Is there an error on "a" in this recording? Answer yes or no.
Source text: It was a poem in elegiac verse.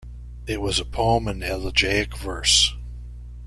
no